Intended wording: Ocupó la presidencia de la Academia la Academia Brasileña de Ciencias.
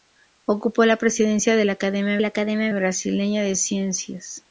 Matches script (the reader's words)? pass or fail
pass